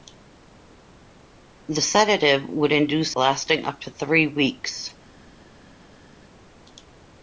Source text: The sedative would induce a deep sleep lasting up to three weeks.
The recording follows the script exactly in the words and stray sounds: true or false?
false